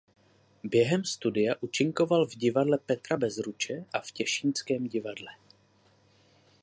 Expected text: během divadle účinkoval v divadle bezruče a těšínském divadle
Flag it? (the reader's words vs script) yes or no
yes